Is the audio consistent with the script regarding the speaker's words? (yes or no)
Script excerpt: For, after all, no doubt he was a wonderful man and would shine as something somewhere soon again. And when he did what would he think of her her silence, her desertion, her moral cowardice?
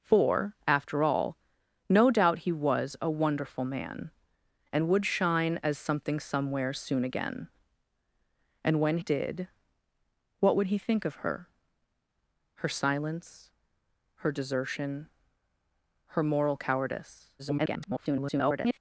no